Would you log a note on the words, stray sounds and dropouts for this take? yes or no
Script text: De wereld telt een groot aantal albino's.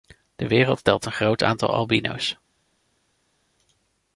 no